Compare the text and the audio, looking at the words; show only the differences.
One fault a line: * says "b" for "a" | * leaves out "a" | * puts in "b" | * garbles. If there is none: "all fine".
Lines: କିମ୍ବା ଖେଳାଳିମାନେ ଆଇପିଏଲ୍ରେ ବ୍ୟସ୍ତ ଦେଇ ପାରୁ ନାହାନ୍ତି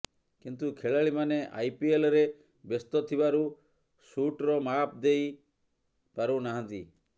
* says "କିନ୍ତୁ" for "କିମ୍ବା"
* puts in "ଥିବାରୁ ସୁଟ୍ର ମାପ୍"